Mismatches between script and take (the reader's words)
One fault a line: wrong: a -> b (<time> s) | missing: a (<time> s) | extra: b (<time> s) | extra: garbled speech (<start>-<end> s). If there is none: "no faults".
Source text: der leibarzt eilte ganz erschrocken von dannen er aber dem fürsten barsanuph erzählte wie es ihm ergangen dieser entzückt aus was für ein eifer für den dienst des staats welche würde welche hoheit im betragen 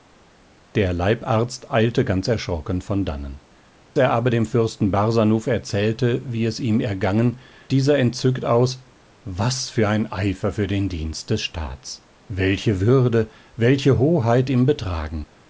no faults